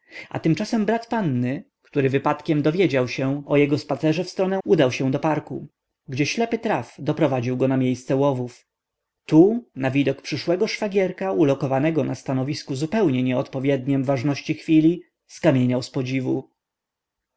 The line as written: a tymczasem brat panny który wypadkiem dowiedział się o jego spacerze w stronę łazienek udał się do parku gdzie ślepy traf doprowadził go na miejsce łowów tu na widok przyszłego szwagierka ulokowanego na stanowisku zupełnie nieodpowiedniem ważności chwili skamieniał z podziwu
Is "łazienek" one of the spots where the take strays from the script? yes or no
yes